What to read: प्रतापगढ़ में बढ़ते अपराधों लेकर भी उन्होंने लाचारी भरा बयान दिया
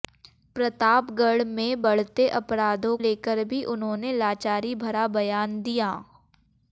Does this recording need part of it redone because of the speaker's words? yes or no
no